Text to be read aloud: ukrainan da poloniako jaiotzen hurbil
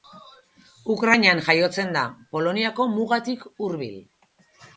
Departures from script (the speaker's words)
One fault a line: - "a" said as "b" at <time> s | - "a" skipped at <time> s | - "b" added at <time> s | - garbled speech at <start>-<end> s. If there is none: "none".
- "jaiotzen" added at 1.5 s
- "jaiotzen" said as "mugatik" at 2.9 s